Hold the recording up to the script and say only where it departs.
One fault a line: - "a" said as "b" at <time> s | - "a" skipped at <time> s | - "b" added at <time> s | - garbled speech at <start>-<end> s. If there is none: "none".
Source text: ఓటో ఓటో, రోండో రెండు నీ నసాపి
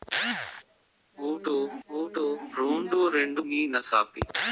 none